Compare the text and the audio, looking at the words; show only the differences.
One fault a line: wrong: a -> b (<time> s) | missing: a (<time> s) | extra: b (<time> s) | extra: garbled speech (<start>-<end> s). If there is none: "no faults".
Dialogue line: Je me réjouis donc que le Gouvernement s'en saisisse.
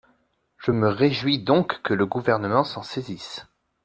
no faults